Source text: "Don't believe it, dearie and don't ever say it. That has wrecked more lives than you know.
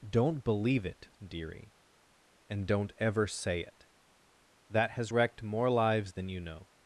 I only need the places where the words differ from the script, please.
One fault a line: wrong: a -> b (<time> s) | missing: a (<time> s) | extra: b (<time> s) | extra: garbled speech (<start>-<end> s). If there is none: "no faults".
no faults